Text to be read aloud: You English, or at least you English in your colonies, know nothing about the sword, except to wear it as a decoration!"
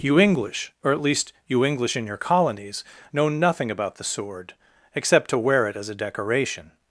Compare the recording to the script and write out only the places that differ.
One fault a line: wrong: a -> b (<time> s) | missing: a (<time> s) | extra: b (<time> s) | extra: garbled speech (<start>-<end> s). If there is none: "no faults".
no faults